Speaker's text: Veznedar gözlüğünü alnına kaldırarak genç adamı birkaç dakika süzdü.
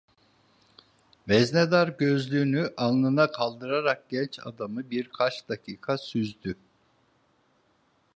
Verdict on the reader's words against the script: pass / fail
pass